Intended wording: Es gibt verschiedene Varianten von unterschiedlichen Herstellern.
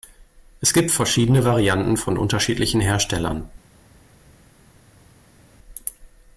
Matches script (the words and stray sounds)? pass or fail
pass